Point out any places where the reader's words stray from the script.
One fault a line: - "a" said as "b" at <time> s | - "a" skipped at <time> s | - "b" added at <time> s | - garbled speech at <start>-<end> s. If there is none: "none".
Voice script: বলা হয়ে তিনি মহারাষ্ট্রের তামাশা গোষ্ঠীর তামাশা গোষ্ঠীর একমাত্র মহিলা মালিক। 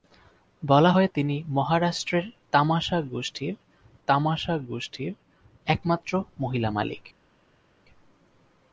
none